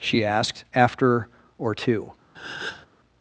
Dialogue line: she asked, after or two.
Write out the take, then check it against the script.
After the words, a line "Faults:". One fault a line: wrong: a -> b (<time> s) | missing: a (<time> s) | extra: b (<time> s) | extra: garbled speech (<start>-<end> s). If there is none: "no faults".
she asked, after or two.
Faults:
no faults